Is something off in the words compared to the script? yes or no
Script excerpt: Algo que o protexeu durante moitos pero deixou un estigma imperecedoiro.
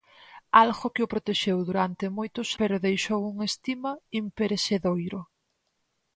no